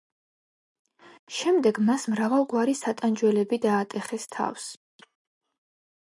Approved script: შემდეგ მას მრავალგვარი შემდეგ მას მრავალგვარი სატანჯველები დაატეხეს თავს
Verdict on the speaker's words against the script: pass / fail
fail